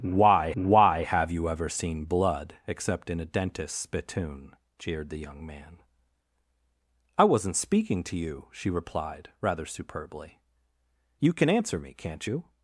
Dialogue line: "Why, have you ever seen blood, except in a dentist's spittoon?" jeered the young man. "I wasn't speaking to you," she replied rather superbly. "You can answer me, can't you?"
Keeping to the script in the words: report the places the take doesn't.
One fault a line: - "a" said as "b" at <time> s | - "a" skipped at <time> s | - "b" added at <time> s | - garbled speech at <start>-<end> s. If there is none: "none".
- "why" added at 0.5 s